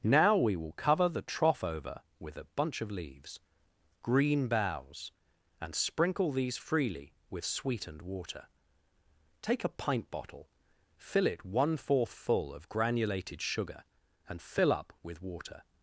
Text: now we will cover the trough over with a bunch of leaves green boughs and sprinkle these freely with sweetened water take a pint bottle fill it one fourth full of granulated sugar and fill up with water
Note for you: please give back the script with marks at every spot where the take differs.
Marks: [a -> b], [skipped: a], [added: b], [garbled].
now we will cover the trough over with a bunch of leaves green boughs and sprinkle these freely with sweetened water take a pint bottle fill it one fourth full of granulated sugar and fill up with water